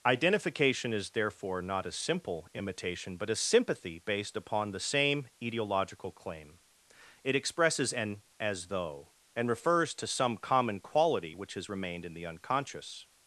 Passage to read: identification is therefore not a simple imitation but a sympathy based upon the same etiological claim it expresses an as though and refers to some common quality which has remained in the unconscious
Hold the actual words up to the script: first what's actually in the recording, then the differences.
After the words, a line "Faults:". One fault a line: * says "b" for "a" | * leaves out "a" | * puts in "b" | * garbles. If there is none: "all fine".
identification is therefore not a simple imitation but a sympathy based upon the same etiological claim it expresses an as though and refers to some common quality which has remained in the unconscious
Faults:
all fine